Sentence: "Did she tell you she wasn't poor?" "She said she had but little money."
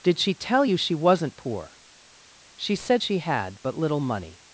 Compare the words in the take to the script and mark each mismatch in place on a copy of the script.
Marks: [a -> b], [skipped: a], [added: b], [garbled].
"Did she tell you she wasn't poor?" "She said she had but little money."